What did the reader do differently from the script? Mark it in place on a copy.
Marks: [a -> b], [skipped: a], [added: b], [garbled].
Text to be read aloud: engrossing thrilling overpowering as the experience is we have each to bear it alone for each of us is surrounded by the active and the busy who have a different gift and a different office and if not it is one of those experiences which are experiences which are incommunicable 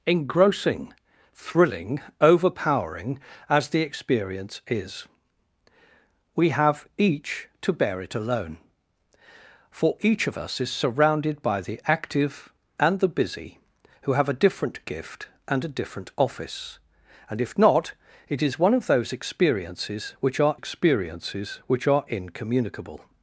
engrossing thrilling overpowering as the experience is we have each to bear it alone for each of us is surrounded by the active and the busy who have a different gift and a different office and if not it is one of those experiences which are experiences which are incommunicable